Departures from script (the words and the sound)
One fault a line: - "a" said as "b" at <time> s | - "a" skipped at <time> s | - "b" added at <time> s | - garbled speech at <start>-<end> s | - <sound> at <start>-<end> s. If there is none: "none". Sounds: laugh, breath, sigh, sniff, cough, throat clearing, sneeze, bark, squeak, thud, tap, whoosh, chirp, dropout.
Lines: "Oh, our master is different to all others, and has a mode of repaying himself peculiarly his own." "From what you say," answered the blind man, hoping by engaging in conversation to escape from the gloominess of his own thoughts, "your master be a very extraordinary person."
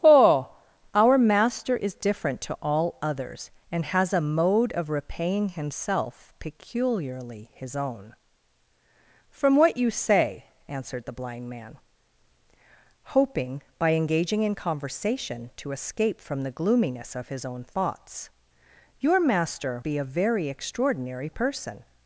none